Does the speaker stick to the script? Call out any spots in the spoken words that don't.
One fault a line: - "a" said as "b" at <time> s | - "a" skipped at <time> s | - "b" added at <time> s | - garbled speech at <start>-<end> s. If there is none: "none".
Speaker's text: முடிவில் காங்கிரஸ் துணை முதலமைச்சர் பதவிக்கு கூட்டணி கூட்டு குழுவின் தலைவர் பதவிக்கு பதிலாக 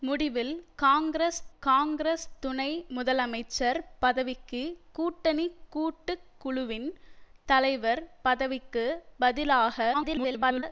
- "காங்கிரஸ்" added at 1.6 s
- garbled speech at 9.9-10.6 s